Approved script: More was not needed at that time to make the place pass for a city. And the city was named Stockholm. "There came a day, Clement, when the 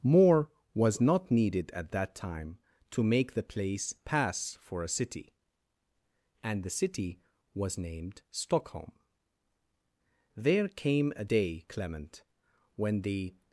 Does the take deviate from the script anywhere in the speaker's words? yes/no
no